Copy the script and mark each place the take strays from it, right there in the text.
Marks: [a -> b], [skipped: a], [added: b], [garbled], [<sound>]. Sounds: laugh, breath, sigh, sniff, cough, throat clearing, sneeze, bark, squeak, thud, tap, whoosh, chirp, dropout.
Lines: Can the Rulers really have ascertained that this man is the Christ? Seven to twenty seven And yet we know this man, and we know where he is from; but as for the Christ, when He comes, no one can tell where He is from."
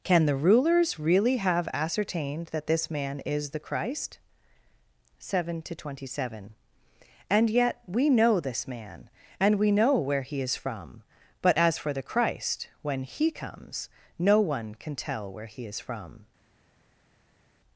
Can the Rulers really have ascertained that this man is the Christ? Seven to twenty seven And yet we know this man, and we know where he is from; but as for the Christ, when He comes, no one can tell where He is from."